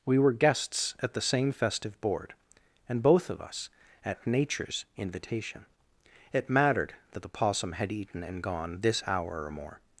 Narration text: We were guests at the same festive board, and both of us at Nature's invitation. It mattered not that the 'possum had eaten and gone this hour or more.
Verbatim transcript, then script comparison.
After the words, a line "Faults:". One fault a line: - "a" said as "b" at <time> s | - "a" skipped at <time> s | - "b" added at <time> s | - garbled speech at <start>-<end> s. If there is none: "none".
We were guests at the same festive board, and both of us at Nature's invitation. It mattered that the 'possum had eaten and gone this hour or more.
Faults:
- "not" skipped at 6.9 s